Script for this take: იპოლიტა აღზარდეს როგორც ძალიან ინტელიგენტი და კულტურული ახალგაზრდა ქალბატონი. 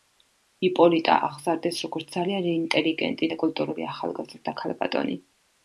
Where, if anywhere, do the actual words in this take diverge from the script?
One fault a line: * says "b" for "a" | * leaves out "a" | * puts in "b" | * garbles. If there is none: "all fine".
all fine